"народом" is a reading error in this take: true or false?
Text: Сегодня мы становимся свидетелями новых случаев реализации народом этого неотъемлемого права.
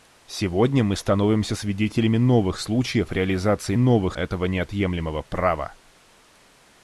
true